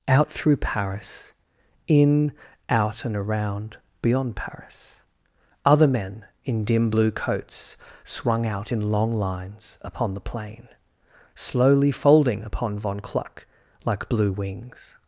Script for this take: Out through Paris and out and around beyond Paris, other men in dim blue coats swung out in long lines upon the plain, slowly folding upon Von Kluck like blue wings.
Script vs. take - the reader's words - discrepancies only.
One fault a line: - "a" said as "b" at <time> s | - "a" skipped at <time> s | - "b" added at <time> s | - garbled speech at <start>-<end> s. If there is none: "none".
- "and" said as "in" at 1.9 s